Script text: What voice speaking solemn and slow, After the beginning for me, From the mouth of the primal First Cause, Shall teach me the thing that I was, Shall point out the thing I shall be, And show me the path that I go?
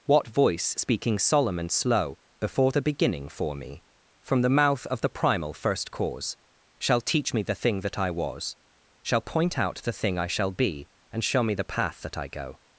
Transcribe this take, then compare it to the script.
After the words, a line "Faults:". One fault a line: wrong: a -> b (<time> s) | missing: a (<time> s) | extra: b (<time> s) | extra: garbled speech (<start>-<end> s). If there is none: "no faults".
What voice speaking solemn and slow, Before the beginning for me, From the mouth of the primal First Cause, Shall teach me the thing that I was, Shall point out the thing I shall be, And show me the path that I go?
Faults:
wrong: After -> Before (2.4 s)